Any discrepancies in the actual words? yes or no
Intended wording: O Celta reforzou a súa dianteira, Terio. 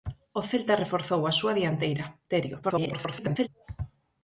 yes